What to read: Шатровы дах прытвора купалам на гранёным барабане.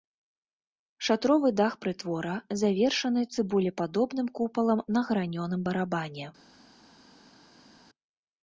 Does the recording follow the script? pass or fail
fail